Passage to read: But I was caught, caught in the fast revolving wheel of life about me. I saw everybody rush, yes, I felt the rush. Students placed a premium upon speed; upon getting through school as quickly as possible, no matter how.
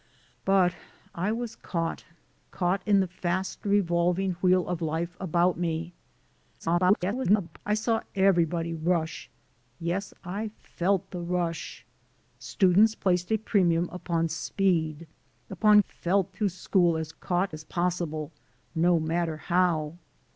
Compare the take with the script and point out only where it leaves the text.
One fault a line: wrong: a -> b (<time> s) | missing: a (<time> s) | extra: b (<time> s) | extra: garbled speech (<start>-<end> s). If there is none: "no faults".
extra: garbled speech (6.6-7.6 s)
wrong: getting -> felt (15.9 s)
wrong: quickly -> caught (17.2 s)